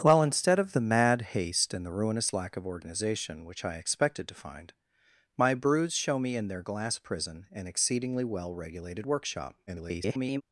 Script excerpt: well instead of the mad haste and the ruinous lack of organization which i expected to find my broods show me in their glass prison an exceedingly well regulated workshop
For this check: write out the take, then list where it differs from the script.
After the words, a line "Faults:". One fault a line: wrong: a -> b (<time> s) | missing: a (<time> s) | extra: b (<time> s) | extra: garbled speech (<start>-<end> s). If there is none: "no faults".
well instead of the mad haste and the ruinous lack of organization which i expected to find my broods show me in their glass prison an exceedingly well regulated workshop [garbled]
Faults:
extra: garbled speech (9.7-10.4 s)